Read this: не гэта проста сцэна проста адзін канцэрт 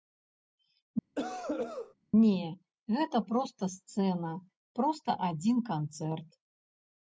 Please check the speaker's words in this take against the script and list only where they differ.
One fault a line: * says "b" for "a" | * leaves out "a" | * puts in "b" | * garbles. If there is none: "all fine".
all fine